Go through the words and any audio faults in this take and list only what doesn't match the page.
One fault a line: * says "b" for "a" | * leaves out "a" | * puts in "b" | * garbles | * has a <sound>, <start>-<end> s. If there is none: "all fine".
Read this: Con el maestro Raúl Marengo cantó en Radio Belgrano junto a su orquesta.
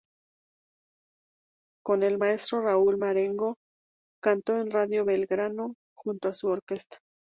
all fine